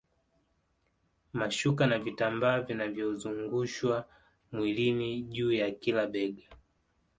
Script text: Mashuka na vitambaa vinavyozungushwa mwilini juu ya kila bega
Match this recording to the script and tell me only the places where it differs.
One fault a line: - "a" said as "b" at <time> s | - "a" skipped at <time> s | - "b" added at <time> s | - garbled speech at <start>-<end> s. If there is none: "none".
none